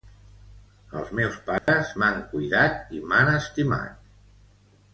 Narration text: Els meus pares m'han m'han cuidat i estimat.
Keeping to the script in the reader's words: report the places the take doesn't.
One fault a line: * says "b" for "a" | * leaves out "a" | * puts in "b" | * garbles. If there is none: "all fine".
* leaves out "m'han"
* puts in "m'han"